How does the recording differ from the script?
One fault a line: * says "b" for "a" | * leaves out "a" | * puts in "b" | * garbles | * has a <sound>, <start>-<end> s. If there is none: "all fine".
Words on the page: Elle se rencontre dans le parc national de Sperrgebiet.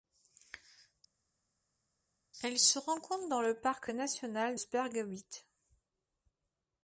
* leaves out "de"